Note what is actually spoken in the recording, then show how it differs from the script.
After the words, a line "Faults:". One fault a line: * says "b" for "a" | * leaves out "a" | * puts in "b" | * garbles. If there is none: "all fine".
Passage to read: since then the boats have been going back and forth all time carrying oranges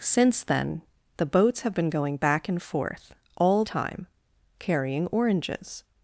since then the boats have been going back and forth all time carrying oranges
Faults:
all fine